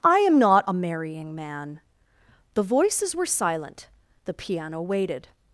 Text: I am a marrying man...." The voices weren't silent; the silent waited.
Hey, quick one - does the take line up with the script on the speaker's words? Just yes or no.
no